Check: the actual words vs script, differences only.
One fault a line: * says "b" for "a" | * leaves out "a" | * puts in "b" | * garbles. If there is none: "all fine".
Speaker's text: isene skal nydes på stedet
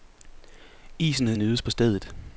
* leaves out "skal"